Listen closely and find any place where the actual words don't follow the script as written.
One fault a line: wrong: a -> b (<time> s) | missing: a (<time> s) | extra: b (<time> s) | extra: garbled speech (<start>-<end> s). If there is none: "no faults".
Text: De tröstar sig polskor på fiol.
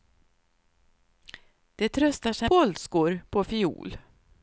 no faults